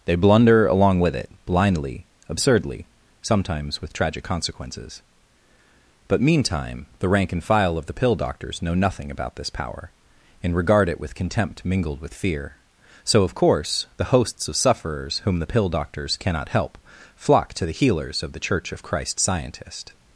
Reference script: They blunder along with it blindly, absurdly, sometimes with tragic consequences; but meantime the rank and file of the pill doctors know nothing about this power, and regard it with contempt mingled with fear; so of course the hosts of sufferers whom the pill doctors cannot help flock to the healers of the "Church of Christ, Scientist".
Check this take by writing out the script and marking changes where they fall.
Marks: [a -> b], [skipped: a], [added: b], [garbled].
They blunder along with it blindly, absurdly, sometimes with tragic consequences; but meantime the rank and file of the pill doctors know nothing about this power, and regard it with contempt mingled with fear; so of course the hosts of sufferers whom the pill doctors cannot help flock to the healers of the "Church of Christ, Scientist".